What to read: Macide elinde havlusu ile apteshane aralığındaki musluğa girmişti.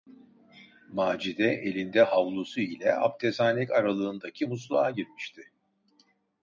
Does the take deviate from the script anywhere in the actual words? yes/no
no